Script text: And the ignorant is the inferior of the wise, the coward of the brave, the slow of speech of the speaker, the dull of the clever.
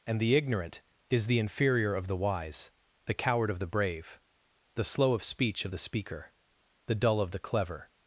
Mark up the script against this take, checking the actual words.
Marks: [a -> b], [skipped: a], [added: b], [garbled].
And the ignorant is the inferior of the wise, the coward of the brave, the slow of speech of the speaker, the dull of the clever.